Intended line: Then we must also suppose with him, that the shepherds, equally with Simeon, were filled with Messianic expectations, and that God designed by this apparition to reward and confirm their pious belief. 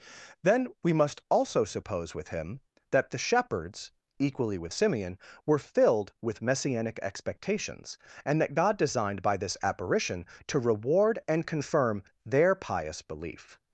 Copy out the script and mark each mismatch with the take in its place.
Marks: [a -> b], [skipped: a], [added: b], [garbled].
Then we must also suppose with him, that the shepherds, equally with Simeon, were filled with Messianic expectations, and that God designed by this apparition to reward and confirm their pious belief.